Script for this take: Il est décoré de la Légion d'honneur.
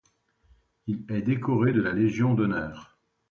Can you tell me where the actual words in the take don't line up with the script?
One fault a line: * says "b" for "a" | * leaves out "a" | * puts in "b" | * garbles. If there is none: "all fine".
all fine